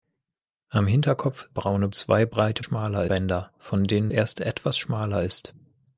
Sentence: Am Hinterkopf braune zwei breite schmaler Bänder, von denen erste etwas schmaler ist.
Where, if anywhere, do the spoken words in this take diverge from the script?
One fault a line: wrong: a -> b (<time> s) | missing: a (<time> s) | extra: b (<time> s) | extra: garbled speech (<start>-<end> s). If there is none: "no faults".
no faults